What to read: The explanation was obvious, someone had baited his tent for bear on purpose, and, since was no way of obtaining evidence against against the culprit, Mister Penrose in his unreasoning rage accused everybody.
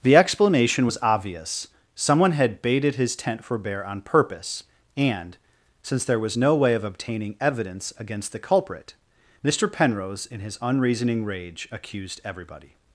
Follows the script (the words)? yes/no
no